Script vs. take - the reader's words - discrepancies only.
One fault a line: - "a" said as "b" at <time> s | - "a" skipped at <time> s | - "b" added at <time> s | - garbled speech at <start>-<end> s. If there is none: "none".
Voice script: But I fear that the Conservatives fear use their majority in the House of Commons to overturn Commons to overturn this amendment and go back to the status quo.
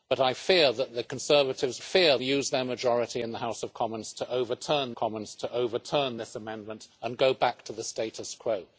none